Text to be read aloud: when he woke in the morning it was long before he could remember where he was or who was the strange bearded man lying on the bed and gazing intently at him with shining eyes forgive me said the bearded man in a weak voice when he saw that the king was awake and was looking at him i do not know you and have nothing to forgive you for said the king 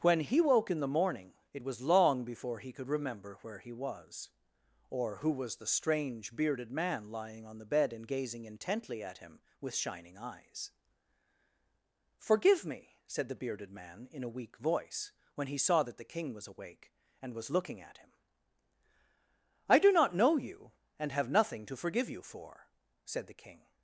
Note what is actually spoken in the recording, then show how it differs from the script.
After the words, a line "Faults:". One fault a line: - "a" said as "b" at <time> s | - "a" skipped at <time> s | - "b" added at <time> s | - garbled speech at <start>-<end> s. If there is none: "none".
when he woke in the morning it was long before he could remember where he was or who was the strange bearded man lying on the bed and gazing intently at him with shining eyes forgive me said the bearded man in a weak voice when he saw that the king was awake and was looking at him i do not know you and have nothing to forgive you for said the king
Faults:
none